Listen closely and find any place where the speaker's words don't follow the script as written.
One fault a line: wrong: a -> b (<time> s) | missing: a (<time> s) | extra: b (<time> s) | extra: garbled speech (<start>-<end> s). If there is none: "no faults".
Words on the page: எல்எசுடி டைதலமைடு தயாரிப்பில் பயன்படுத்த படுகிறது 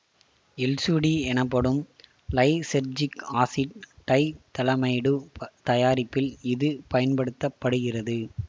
extra: எனப்படும் லைசெர்ஜிக் ஆசிட் (1.2 s)
extra: இது (6.5 s)